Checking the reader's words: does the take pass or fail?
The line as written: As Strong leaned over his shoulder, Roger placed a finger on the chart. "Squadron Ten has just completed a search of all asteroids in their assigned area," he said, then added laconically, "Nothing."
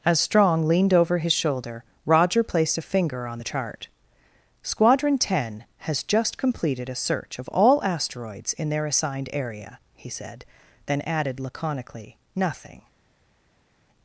pass